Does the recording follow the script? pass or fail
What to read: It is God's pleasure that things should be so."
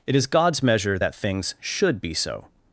fail